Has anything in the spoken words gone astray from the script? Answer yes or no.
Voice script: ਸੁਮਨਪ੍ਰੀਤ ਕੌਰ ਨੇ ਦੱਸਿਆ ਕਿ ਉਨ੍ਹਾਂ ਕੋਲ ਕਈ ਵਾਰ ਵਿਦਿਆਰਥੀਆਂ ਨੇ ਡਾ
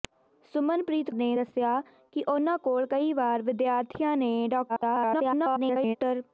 yes